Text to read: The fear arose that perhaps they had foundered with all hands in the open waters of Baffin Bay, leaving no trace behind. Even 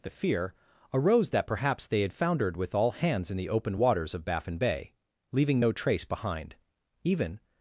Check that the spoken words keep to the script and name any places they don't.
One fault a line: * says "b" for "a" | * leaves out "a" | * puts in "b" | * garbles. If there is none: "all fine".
all fine